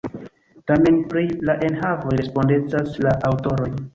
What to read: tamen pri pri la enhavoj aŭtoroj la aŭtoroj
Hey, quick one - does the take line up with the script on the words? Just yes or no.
no